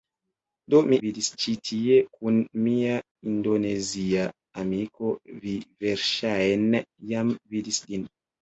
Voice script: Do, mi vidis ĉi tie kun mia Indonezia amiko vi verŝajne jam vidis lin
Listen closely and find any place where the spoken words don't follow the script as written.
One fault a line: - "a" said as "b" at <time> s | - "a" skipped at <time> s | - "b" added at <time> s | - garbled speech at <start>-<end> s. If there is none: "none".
none